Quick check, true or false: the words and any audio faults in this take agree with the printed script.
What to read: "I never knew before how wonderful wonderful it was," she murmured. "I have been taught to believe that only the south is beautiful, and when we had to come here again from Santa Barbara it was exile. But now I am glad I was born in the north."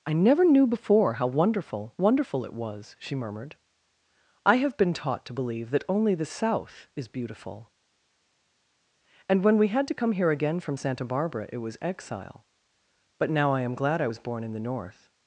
true